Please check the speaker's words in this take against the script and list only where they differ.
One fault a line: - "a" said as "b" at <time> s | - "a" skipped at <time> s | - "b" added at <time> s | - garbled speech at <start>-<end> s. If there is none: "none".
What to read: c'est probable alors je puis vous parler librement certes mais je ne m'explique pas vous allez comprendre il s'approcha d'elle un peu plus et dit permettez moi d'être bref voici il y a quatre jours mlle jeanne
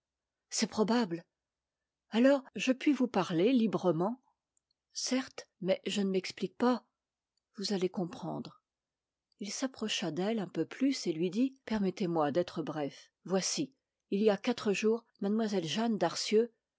- "lui" added at 11.1 s